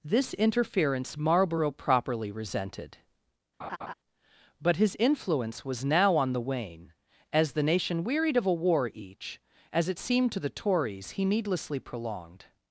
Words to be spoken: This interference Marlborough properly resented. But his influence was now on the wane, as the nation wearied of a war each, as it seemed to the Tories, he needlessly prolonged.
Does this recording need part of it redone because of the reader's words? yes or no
no